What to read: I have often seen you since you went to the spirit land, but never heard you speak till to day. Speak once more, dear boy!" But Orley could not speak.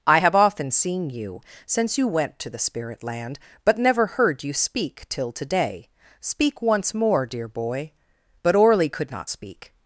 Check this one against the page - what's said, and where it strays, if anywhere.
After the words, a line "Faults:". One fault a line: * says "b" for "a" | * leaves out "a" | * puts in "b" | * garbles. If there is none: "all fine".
I have often seen you since you went to the spirit land, but never heard you speak till to day. Speak once more, dear boy!" But Orley could not speak.
Faults:
all fine